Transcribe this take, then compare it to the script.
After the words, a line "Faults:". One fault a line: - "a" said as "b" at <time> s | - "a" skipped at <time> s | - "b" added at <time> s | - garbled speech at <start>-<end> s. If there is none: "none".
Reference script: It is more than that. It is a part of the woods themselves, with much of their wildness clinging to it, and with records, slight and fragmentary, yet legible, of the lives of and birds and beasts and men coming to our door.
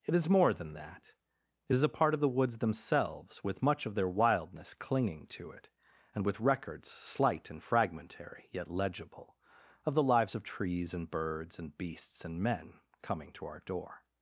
It is more than that. It is a part of the woods themselves, with much of their wildness clinging to it, and with records, slight and fragmentary, yet legible, of the lives of trees and birds and beasts and men coming to our door.
Faults:
- "trees" added at 10.4 s